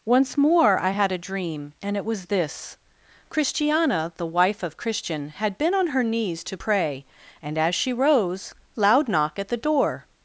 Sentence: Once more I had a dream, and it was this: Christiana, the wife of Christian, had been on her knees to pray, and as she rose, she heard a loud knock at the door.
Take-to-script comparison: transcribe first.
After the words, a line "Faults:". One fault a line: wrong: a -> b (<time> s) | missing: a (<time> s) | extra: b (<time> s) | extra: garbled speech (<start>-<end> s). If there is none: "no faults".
Once more I had a dream, and it was this: Christiana, the wife of Christian, had been on her knees to pray, and as she rose, loud knock at the door.
Faults:
missing: she heard a (8.5 s)